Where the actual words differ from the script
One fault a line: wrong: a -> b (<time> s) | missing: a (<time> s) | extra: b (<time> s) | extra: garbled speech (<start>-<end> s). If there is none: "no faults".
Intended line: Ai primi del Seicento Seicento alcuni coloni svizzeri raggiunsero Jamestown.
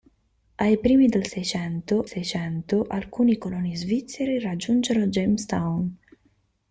no faults